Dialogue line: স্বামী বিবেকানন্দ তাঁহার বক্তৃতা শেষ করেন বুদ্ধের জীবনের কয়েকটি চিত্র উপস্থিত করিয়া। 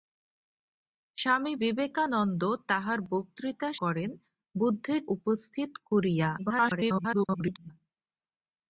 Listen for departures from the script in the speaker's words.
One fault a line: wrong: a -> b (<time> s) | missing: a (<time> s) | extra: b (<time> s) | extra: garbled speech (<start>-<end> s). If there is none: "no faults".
missing: শেষ (3.7 s)
missing: জীবনের কয়েকটি চিত্র (5.0 s)
extra: garbled speech (6.4-7.7 s)